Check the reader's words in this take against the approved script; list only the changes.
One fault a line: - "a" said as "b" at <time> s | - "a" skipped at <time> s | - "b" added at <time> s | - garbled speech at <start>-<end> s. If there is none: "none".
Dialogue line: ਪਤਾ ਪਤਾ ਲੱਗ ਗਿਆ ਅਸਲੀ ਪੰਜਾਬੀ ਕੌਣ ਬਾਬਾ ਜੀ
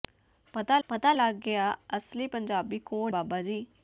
none